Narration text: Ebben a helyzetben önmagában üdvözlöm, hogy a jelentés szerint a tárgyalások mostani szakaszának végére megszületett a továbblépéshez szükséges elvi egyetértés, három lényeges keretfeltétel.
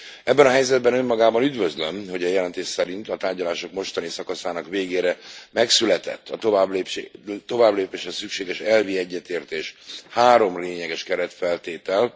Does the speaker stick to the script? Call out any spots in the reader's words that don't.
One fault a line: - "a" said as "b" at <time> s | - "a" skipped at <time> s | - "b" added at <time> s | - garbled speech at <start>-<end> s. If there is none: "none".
none